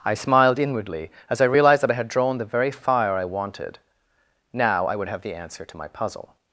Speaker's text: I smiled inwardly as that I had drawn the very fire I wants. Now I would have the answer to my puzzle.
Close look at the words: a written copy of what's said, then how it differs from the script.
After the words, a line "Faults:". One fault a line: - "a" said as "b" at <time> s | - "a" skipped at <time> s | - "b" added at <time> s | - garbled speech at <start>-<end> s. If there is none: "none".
I smiled inwardly as I realized that I had drawn the very fire I wanted. Now I would have the answer to my puzzle.
Faults:
- "I realized" added at 1.4 s
- "wants" said as "wanted" at 3.2 s